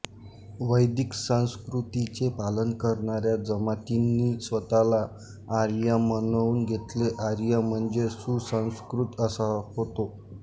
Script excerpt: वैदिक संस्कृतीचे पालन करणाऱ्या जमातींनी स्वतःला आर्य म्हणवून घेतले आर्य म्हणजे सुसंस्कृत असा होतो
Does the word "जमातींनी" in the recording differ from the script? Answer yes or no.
no